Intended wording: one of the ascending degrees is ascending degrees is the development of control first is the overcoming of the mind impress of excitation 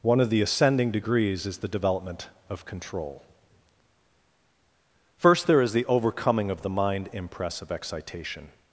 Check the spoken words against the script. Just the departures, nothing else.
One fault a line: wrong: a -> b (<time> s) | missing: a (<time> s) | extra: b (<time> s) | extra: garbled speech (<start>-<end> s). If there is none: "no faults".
missing: ascending degrees is (1.6 s)
extra: there (5.5 s)